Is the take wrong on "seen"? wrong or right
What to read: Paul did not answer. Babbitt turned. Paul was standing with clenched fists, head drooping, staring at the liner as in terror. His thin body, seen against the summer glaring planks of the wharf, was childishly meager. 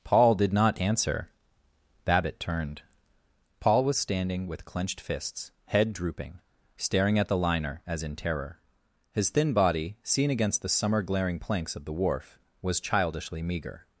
right